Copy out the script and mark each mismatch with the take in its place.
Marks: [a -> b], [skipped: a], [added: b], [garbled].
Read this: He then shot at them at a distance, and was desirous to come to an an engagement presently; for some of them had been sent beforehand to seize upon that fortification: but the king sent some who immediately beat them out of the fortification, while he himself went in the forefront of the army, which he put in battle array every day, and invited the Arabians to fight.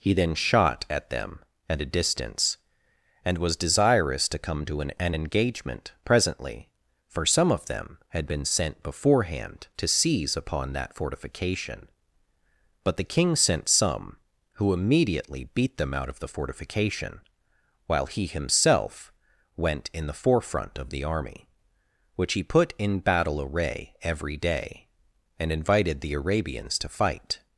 He then shot at them at a distance, and was desirous to come to an an engagement presently; for some of them had been sent beforehand to seize upon that fortification: but the king sent some who immediately beat them out of the fortification, while he himself went in the forefront of the army, which he put in battle array every day, and invited the Arabians to fight.